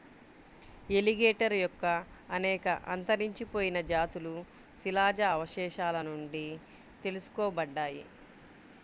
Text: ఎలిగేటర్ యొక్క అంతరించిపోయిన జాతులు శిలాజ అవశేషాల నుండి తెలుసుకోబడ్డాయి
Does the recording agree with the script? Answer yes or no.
no